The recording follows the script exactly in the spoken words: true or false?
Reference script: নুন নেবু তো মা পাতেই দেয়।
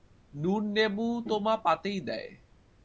true